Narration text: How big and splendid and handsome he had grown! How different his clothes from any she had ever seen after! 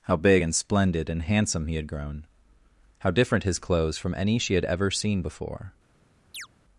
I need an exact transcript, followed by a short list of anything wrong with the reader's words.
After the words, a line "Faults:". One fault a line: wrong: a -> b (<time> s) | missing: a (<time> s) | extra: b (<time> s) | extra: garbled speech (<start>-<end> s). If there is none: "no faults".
How big and splendid and handsome he had grown! How different his clothes from any she had ever seen before!
Faults:
wrong: after -> before (5.2 s)